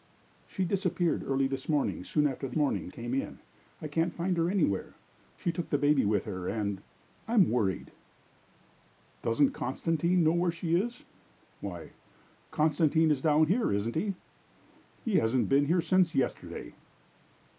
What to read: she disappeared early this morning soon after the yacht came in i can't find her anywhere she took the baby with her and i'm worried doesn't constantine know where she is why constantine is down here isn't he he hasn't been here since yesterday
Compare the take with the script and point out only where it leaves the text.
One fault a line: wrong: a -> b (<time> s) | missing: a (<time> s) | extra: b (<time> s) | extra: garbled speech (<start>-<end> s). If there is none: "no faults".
wrong: yacht -> morning (2.6 s)